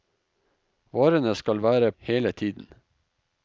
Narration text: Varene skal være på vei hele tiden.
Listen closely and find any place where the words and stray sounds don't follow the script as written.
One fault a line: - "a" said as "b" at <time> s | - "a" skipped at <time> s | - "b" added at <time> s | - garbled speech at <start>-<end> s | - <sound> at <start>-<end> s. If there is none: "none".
- "på vei" skipped at 1.9 s